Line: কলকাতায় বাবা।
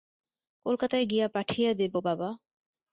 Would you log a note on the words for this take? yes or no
yes